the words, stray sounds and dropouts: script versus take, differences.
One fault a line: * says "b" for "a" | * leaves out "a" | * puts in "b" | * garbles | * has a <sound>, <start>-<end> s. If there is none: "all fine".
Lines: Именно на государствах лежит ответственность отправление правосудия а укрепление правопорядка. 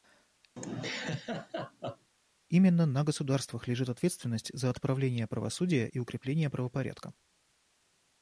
* has a laugh, 0.6-2.1 s
* puts in "за"
* says "и" for "а"